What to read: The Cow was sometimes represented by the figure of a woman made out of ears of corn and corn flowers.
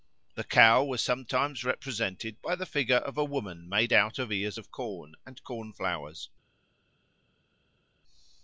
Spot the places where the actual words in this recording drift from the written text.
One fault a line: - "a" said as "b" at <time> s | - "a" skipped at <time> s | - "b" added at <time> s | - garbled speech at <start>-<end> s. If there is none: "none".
none